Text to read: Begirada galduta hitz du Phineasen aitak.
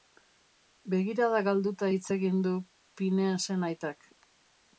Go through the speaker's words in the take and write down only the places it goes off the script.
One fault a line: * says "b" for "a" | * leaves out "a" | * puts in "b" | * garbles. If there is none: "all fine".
* puts in "egin"